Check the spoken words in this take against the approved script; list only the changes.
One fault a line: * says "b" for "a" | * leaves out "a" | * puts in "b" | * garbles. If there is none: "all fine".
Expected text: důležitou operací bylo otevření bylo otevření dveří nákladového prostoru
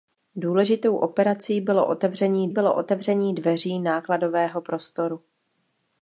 all fine